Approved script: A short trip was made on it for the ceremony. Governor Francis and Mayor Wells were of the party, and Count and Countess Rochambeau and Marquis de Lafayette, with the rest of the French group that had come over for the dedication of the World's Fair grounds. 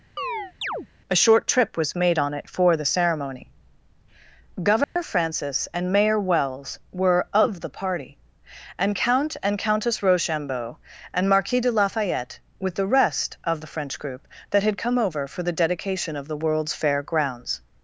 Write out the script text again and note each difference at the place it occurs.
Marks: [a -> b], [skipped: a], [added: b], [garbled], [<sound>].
[chirp] A short trip was made on it for the ceremony. Governor [dropout] Francis and Mayor Wells were of the party, and Count and Countess Rochambeau and Marquis de Lafayette, with the rest of the French group that had come over for the dedication of the World's Fair grounds.